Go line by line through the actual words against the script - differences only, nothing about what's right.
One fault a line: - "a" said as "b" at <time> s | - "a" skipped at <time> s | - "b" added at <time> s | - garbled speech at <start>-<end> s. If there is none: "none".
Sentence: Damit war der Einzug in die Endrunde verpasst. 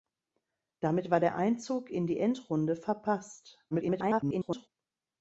- garbled speech at 3.7-4.7 s